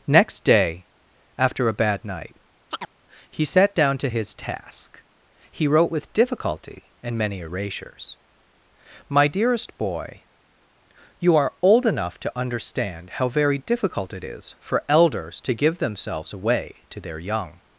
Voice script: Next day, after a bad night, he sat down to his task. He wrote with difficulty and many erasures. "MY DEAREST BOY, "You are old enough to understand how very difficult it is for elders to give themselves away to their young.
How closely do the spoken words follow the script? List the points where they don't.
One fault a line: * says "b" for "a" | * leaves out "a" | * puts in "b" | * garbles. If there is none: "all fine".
all fine